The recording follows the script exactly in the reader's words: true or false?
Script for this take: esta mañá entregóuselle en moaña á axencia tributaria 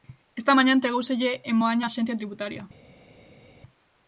true